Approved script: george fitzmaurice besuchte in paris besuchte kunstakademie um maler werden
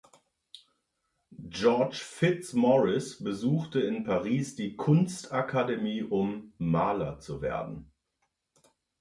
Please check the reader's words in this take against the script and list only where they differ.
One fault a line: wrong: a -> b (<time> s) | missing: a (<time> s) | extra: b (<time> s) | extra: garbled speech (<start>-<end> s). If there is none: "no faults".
wrong: besuchte -> die (4.6 s)
extra: zu (7.2 s)